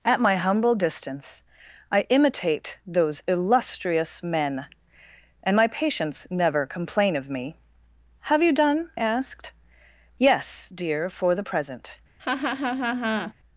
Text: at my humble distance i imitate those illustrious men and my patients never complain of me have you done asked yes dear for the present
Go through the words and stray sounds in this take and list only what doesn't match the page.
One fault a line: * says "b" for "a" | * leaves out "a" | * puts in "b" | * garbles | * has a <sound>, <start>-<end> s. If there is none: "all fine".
* has a laugh, 12.2-13.3 s